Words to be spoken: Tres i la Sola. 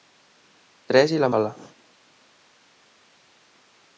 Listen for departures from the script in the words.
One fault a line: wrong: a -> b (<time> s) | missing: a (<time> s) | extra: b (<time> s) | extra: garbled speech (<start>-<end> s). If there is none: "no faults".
no faults